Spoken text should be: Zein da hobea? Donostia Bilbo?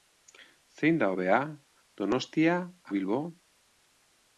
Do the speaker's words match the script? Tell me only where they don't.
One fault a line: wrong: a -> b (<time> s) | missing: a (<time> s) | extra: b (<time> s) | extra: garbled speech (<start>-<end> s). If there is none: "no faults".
no faults